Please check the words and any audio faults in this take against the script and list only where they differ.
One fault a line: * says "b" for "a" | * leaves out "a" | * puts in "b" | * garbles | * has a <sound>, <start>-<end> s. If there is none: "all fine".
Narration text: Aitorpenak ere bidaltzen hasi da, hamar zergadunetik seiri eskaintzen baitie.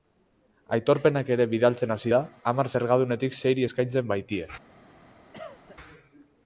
* has a cough, 5.3-5.8 s